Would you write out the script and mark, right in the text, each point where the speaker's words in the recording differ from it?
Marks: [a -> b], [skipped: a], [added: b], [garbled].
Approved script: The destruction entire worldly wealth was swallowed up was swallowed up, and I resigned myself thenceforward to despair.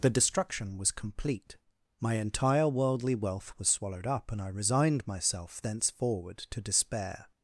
The destruction [added: was complete My] entire worldly wealth was swallowed up [skipped: was swallowed up,] and I resigned myself thenceforward to despair.